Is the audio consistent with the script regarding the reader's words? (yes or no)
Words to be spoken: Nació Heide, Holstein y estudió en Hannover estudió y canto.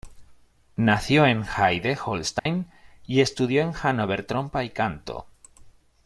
no